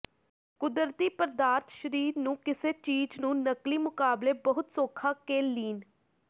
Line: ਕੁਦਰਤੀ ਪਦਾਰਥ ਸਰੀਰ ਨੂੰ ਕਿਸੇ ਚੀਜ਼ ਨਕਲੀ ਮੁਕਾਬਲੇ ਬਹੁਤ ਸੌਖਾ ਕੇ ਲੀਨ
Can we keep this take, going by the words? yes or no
no